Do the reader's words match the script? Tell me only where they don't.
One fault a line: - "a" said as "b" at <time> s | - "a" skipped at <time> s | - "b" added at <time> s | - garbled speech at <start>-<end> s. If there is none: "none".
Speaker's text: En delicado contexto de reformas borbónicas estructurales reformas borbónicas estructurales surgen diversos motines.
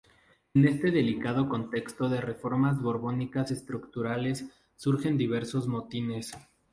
- "este" added at 0.7 s
- "reformas borbónicas estructurales" skipped at 4.5 s